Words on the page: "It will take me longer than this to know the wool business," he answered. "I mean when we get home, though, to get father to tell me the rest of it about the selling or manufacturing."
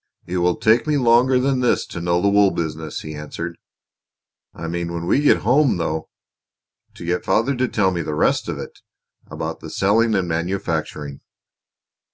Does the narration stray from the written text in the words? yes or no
yes